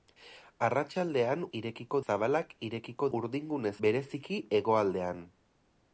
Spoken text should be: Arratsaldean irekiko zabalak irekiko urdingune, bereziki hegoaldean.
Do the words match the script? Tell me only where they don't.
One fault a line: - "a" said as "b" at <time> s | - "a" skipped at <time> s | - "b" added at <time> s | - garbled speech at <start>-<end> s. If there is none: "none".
none